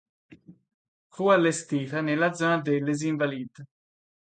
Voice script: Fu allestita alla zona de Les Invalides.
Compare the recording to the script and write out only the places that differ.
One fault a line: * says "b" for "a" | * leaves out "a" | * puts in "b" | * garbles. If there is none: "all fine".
* says "nella" for "alla"